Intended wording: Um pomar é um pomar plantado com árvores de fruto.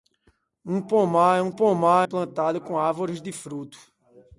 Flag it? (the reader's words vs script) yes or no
no